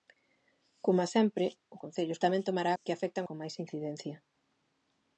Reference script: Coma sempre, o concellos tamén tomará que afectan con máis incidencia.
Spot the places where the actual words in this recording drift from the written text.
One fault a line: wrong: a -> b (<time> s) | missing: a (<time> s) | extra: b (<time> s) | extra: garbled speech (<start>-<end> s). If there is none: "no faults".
no faults